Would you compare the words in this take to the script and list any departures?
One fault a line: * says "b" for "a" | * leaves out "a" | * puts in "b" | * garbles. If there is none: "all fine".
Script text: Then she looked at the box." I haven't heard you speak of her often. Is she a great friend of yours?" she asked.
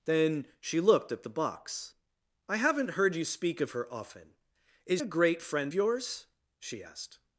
* leaves out "she"
* leaves out "of"